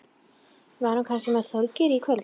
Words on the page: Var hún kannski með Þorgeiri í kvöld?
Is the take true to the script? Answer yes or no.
yes